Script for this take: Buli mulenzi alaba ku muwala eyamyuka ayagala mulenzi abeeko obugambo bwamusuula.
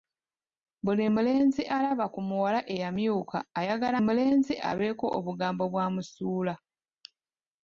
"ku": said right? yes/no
yes